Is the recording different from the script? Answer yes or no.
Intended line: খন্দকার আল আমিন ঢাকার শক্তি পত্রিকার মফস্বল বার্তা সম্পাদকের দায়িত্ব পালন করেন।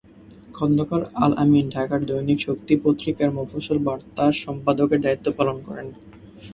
yes